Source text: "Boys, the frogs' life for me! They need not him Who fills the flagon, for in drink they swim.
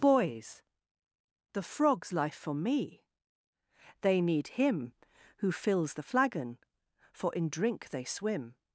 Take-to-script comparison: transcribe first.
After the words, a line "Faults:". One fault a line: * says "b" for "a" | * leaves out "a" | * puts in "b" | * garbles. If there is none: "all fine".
"Boys, the frogs' life for me! They need him Who fills the flagon, for in drink they swim.
Faults:
* leaves out "not"